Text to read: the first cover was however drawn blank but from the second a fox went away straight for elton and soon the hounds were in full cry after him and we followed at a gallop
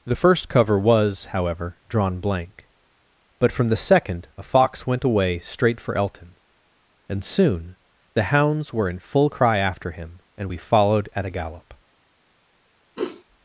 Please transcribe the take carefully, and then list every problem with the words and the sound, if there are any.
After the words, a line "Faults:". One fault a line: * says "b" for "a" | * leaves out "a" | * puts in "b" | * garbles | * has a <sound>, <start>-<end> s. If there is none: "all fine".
the first cover was however drawn blank but from the second a fox went away straight for elton and soon the hounds were in full cry after him and we followed at a gallop
Faults:
* has a sniff, 13.0-13.2 s